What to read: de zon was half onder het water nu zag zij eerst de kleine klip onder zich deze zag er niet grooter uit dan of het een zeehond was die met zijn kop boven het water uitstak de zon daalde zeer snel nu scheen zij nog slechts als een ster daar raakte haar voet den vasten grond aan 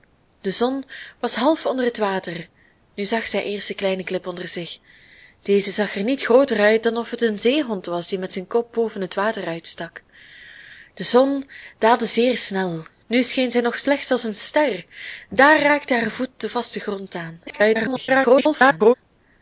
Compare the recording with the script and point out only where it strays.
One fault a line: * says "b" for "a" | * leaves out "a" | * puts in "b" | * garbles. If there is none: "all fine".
* garbles